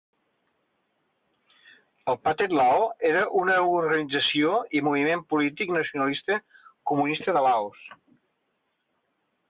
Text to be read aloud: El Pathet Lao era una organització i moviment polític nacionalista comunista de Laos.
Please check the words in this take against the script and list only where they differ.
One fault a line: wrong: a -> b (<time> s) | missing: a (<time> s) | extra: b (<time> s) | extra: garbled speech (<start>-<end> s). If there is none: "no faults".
no faults